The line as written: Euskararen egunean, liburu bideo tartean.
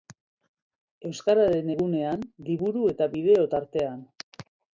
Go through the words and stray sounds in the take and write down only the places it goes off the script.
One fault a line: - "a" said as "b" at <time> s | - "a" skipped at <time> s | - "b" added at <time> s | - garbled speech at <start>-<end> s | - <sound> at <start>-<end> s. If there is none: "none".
- "eta" added at 2.9 s